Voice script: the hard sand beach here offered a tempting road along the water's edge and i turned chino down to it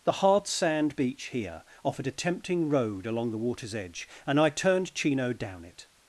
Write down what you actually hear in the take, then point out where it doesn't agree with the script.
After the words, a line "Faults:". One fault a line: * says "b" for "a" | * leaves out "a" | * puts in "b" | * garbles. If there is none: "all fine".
the hard sand beach here offered a tempting road along the water's edge and i turned chino down it
Faults:
* leaves out "to"